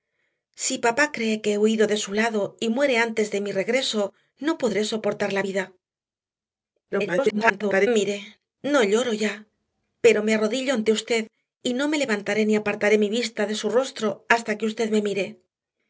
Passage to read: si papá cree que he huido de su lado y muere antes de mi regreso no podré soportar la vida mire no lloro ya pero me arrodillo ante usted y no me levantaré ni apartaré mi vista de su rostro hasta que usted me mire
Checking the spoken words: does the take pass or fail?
fail